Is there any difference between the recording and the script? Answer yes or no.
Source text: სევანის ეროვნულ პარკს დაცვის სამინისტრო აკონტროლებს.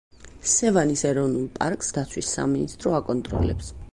no